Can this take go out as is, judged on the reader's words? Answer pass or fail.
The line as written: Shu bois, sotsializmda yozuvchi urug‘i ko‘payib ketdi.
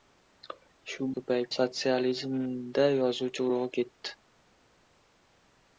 fail